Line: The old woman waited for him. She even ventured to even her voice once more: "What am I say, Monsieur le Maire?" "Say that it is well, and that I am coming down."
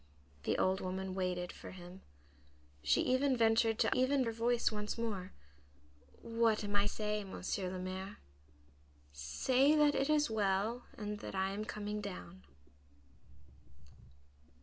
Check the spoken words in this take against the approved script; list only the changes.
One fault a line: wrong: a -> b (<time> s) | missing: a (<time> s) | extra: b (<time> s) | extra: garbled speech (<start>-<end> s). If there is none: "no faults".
no faults